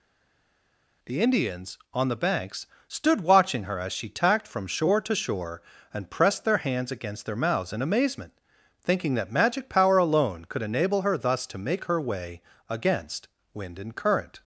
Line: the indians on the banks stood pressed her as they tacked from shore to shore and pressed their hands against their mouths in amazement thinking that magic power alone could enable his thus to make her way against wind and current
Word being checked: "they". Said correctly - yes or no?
no